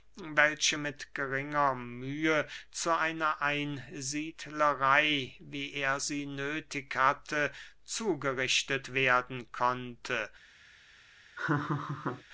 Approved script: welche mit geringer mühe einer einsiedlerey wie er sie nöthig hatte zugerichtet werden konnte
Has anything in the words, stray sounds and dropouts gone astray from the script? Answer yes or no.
yes